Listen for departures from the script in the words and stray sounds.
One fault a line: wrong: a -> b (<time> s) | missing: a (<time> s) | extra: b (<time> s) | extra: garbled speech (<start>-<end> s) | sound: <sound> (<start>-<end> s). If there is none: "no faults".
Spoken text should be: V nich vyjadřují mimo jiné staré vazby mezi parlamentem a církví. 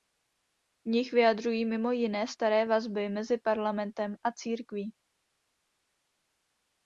no faults